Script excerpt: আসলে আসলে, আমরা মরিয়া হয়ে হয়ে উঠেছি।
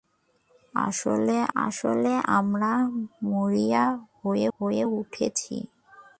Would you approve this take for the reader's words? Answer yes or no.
yes